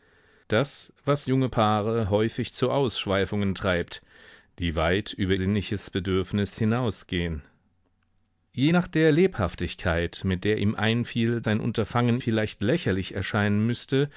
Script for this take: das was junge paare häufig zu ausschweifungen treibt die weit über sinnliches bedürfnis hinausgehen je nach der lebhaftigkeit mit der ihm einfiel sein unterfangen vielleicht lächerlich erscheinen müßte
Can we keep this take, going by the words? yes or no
yes